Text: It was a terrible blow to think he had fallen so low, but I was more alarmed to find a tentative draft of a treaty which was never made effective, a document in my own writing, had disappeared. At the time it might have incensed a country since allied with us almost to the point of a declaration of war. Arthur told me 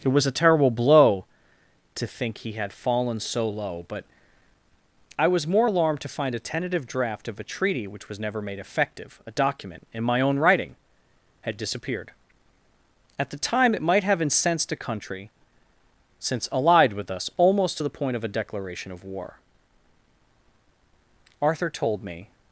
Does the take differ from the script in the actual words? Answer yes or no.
no